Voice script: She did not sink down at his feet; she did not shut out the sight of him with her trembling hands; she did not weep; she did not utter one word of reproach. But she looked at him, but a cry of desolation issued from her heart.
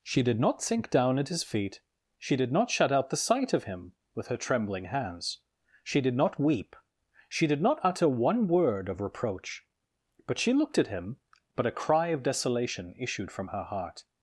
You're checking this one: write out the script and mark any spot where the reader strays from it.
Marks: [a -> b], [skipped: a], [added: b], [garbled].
She did not sink down at his feet; she did not shut out the sight of him with her trembling hands; she did not weep; she did not utter one word of reproach. But she looked at him, but a cry of desolation issued from her heart.